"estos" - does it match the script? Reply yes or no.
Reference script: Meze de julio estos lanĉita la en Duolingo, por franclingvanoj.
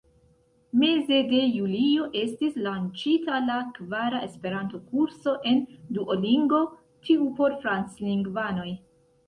no